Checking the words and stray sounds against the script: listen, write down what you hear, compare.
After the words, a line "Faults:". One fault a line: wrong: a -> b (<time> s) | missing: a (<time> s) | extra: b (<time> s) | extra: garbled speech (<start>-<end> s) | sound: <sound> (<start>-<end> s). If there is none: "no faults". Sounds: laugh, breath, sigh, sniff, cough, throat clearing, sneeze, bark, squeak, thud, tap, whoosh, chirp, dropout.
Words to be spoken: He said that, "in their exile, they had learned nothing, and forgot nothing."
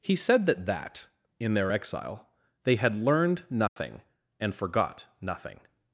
He said that that, "in their exile, they had learned nothing, and forgot nothing."
Faults:
extra: that (0.7 s)
sound: dropout (3.7-3.8 s)